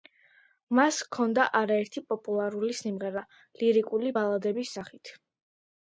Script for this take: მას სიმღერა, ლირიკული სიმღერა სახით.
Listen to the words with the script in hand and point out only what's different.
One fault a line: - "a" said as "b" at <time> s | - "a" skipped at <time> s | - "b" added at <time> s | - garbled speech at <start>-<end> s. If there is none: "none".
- "ჰქონდა არაერთი პოპულარული" added at 1.1 s
- "სიმღერა" said as "ბალადების" at 4.2 s